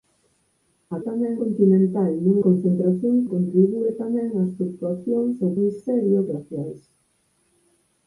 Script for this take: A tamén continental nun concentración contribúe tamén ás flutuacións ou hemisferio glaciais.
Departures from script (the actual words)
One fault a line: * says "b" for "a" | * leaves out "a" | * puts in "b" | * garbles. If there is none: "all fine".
all fine